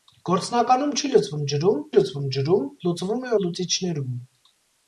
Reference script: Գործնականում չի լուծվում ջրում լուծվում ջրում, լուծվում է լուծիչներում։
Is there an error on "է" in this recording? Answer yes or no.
no